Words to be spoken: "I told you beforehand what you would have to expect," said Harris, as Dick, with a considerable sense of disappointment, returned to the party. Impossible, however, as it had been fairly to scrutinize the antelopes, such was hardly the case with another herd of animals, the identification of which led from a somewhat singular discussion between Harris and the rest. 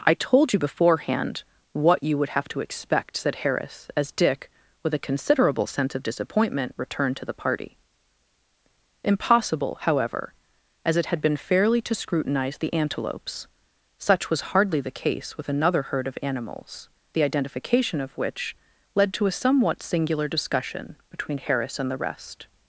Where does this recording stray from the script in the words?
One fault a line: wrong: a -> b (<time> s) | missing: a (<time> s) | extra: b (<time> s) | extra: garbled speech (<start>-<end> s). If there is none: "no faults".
wrong: from -> to (19.1 s)